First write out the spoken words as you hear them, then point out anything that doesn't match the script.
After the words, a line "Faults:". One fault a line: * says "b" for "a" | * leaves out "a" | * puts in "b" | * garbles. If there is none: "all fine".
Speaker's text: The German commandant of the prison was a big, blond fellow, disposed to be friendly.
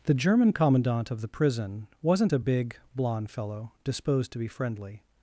The German commandant of the prison wasn't a big, blond fellow, disposed to be friendly.
Faults:
* says "wasn't" for "was"